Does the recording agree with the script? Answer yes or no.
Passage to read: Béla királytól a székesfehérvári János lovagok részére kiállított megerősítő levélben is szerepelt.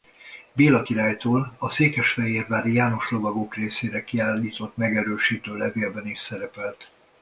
yes